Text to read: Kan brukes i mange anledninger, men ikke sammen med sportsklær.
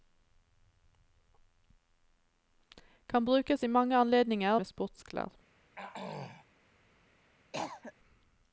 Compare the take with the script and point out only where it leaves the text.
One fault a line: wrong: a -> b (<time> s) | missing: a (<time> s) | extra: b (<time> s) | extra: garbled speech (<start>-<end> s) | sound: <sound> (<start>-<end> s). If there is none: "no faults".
missing: men ikke sammen (4.6 s)
sound: throat clearing (5.8-6.5 s)
sound: cough (7.5-7.9 s)